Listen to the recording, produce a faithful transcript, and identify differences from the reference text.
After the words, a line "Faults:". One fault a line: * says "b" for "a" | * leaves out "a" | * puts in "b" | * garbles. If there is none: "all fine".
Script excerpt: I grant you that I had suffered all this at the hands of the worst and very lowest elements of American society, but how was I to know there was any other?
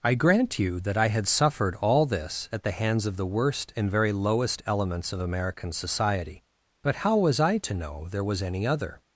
I grant you that I had suffered all this at the hands of the worst and very lowest elements of American society, but how was I to know there was any other?
Faults:
all fine